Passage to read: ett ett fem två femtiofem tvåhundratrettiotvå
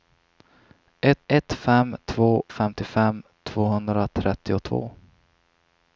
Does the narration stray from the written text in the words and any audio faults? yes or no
no